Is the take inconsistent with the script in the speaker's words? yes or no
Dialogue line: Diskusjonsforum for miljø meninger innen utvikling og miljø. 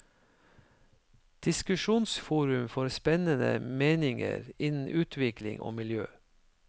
yes